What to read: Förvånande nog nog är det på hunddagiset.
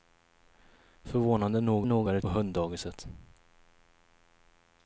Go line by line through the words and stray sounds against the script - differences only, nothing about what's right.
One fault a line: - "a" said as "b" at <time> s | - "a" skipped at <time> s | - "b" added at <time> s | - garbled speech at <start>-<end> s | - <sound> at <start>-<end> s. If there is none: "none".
none